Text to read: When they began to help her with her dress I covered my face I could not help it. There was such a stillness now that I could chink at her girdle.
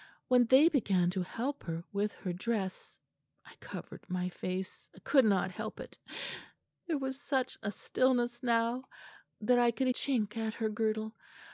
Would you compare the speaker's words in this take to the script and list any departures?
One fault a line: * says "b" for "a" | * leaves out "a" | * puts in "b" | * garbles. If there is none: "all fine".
all fine